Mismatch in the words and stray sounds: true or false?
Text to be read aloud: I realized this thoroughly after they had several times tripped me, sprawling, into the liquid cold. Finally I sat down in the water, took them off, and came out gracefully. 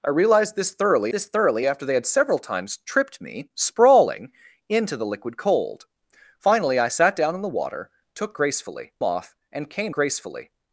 true